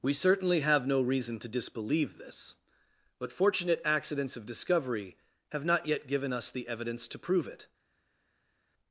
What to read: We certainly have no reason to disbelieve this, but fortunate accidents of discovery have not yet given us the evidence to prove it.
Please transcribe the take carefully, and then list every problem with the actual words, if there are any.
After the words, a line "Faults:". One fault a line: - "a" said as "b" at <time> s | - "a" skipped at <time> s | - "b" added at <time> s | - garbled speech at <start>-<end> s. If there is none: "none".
We certainly have no reason to disbelieve this, but fortunate accidents of discovery have not yet given us the evidence to prove it.
Faults:
none